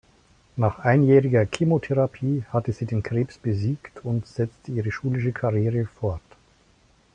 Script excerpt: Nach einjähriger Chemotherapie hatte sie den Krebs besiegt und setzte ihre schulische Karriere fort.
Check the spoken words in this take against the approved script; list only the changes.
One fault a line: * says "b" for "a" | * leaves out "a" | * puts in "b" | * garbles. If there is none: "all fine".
all fine